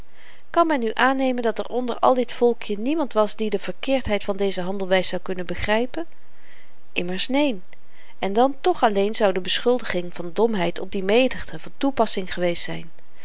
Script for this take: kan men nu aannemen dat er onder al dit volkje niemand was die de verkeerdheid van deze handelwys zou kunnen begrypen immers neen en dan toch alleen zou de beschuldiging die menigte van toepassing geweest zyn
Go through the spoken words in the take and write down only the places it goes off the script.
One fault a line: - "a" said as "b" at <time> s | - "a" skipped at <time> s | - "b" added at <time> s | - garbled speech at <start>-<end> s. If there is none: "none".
- "van domheid op" added at 10.1 s